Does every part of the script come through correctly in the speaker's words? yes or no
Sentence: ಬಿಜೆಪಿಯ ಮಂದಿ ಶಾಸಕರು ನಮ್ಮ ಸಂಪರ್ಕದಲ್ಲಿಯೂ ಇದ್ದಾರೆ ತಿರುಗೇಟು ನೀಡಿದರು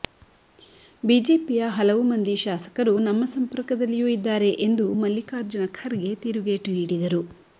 no